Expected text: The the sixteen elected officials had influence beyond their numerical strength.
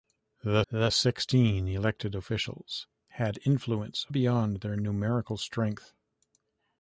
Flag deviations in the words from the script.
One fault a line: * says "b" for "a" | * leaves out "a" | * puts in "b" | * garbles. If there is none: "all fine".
all fine